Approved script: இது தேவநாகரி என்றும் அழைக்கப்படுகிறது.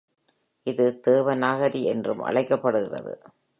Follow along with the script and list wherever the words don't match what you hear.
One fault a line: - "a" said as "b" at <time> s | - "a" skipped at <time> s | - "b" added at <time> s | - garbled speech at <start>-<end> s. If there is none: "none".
none